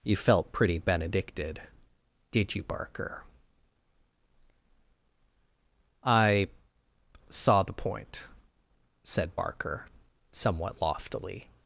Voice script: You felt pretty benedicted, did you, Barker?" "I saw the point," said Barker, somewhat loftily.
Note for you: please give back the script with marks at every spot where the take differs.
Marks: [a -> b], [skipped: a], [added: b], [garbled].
You felt pretty benedicted, did you, Barker?" "I saw the point," said Barker, somewhat loftily.